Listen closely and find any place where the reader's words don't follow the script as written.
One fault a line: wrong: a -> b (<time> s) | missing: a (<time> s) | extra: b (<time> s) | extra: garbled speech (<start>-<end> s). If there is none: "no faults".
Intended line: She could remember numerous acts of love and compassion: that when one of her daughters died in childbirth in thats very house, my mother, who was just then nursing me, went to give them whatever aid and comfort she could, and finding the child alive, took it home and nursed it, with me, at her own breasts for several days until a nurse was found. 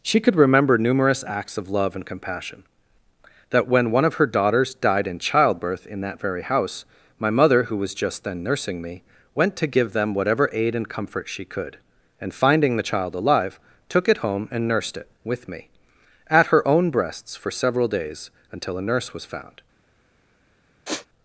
wrong: thats -> that (6.0 s)